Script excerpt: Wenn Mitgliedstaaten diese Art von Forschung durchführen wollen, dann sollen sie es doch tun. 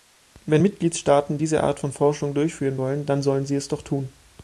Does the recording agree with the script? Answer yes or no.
yes